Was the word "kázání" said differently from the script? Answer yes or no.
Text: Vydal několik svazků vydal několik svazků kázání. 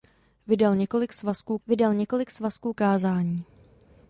no